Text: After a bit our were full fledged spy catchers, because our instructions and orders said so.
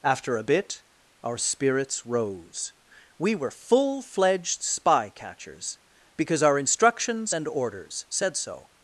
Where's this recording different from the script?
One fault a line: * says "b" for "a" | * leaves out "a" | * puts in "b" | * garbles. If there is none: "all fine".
* puts in "spirits rose We"